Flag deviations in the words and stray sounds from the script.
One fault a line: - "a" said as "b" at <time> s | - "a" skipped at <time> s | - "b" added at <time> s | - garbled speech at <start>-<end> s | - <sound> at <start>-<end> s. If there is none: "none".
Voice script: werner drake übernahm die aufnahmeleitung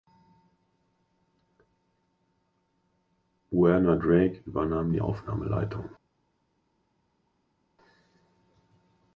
none